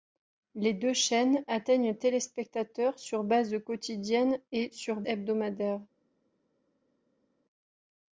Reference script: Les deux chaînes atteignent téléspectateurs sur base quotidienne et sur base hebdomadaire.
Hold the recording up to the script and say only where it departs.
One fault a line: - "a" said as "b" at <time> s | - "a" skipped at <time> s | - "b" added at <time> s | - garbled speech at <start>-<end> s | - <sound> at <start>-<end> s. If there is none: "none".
- "base" skipped at 5.0 s